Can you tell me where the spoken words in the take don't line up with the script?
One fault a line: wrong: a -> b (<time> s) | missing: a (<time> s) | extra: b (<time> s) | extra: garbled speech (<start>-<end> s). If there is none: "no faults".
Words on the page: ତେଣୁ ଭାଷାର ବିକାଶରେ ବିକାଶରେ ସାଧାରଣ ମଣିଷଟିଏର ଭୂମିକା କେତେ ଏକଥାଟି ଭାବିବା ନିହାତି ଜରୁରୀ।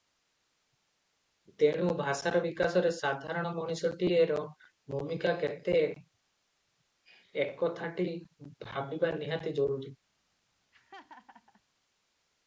missing: ବିକାଶରେ (2.9 s)